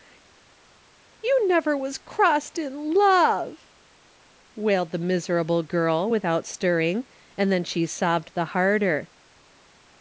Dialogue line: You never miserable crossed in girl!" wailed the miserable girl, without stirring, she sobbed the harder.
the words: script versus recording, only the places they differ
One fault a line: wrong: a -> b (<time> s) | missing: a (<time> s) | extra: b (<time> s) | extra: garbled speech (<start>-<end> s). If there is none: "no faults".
wrong: miserable -> was (1.8 s)
wrong: girl -> love (2.9 s)
extra: and then (7.4 s)